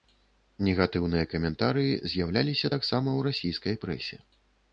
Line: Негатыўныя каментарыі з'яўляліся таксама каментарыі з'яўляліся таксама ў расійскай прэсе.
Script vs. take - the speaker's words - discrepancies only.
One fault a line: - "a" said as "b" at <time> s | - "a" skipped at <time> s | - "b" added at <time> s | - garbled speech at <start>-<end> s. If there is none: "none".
- "каментарыі з'яўляліся таксама" skipped at 3.1 s